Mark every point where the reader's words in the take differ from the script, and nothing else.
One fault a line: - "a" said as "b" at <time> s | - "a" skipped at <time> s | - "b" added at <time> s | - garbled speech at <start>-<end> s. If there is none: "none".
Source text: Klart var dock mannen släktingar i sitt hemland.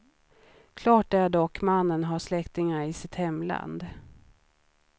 - "var" said as "är" at 1.1 s
- "har" added at 2.0 s